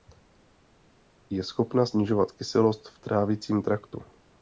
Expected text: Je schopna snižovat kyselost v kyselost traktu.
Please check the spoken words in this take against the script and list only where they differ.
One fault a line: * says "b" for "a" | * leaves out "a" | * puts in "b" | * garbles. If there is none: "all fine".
* says "trávicím" for "kyselost"